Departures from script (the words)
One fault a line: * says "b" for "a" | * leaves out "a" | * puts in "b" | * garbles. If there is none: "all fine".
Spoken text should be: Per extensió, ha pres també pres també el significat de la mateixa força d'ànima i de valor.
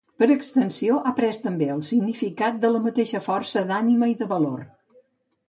* leaves out "pres també"